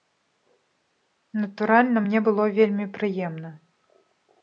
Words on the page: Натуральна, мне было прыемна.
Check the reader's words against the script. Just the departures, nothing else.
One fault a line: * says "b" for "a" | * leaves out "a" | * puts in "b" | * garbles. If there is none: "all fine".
* puts in "вельмі"